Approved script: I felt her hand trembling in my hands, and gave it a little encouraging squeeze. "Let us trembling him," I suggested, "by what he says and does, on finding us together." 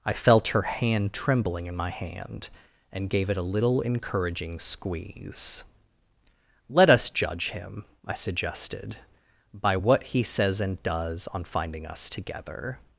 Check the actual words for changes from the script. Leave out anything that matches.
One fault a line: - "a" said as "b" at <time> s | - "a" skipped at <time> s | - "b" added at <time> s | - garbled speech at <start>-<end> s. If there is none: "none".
- "hands" said as "hand" at 1.9 s
- "trembling" said as "judge" at 7.1 s